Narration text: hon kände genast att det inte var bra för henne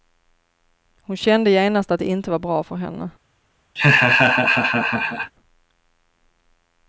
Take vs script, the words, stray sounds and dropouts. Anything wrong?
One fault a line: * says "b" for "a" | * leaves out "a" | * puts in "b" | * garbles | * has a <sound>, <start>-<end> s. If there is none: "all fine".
* has a laugh, 3.8-5.3 s